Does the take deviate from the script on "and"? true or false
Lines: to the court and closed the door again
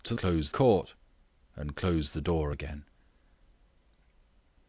false